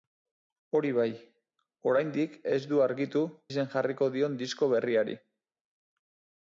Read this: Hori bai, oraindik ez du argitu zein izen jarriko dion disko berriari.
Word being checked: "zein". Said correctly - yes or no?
no